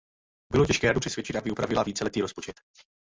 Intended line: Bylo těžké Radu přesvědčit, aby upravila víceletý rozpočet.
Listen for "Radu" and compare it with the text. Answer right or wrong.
right